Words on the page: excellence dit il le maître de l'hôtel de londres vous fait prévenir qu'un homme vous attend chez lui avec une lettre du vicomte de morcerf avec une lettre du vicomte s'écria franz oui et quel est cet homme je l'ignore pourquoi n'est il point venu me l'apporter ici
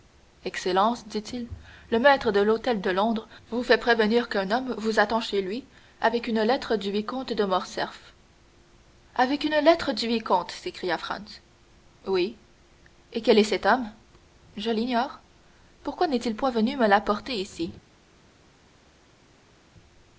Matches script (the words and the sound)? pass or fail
pass